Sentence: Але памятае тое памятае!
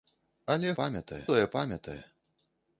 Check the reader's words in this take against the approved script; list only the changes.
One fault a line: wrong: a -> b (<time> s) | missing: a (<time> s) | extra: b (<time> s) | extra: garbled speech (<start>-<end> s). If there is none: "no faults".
no faults